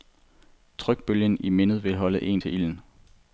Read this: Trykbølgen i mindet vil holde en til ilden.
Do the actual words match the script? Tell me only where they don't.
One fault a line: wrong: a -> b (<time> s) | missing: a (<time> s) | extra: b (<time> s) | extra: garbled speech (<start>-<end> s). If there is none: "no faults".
no faults